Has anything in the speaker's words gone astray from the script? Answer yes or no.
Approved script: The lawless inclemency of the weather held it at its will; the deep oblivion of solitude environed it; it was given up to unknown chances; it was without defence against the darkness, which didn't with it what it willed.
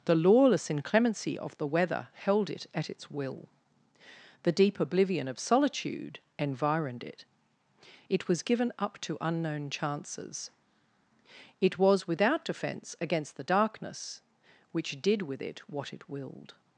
yes